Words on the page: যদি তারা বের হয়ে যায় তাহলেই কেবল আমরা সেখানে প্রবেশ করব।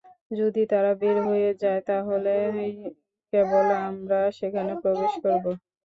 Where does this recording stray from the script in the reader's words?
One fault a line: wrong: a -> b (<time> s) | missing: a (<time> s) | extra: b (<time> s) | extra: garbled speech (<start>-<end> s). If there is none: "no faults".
no faults